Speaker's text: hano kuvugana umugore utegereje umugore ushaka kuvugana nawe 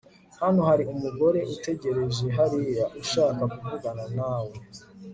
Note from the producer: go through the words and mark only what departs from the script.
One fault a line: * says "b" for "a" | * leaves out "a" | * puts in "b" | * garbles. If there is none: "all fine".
* says "hari" for "kuvugana"
* says "hariya" for "umugore"